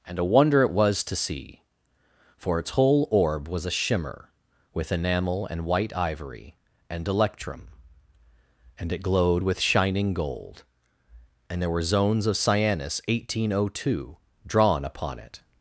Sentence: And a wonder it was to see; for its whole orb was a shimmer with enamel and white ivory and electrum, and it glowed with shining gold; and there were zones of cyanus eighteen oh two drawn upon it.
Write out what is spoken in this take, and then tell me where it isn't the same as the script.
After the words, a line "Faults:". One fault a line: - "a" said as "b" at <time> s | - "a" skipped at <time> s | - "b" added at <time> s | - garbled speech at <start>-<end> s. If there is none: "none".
And a wonder it was to see; for its whole orb was a shimmer with enamel and white ivory and electrum, and it glowed with shining gold; and there were zones of cyanus eighteen oh two drawn upon it.
Faults:
none